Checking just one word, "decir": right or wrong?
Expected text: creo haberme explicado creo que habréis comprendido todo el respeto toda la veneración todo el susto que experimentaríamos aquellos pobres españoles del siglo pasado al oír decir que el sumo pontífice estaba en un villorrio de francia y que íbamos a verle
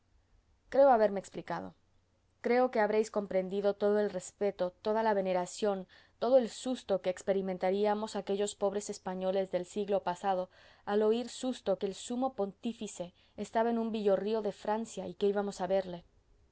wrong